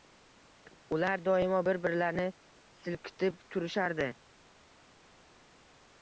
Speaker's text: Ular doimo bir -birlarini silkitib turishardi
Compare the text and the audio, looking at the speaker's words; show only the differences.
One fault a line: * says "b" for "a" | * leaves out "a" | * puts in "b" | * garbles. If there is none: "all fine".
all fine